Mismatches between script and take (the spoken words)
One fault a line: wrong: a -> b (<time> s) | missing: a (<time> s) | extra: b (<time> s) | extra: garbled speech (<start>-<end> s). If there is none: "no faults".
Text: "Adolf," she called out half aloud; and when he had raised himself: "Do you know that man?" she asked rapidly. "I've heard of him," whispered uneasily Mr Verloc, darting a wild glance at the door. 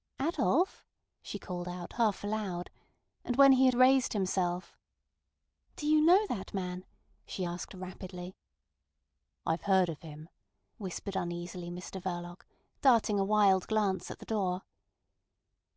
no faults